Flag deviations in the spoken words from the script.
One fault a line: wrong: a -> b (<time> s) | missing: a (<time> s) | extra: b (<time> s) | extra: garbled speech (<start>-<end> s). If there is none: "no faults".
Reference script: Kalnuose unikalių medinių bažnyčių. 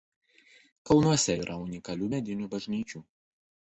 extra: yra (1.4 s)